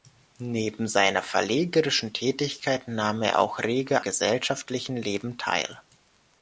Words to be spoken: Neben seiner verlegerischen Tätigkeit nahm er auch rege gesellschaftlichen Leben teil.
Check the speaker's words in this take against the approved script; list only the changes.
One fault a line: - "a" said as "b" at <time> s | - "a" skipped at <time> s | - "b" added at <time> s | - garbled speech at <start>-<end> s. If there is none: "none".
none